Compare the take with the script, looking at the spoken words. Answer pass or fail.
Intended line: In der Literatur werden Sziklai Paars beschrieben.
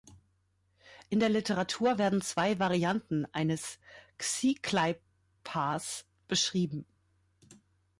fail